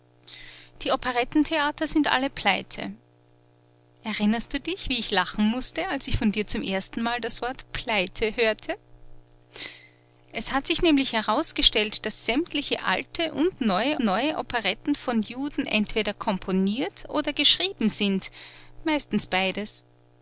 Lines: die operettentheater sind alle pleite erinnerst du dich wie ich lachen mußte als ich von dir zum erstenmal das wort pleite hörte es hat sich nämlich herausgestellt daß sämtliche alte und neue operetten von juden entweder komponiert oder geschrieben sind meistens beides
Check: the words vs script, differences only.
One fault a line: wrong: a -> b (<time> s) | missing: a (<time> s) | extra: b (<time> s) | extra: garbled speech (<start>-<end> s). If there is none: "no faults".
extra: neue (14.0 s)